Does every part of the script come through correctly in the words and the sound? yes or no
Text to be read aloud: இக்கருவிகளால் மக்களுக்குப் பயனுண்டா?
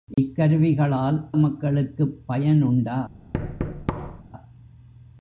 no